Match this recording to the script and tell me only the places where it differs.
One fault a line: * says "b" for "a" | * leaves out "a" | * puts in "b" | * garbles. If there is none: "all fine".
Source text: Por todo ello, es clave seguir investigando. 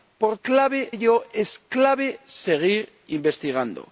* says "clave" for "todo"